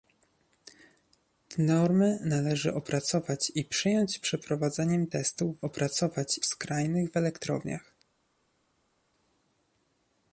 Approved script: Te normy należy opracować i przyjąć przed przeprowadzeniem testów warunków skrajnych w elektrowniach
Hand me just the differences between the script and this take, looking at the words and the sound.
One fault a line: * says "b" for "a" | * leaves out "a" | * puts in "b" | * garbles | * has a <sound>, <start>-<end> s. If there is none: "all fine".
* leaves out "przed"
* says "opracować" for "warunków"